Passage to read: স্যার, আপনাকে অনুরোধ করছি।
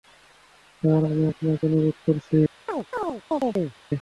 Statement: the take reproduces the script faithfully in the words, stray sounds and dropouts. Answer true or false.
false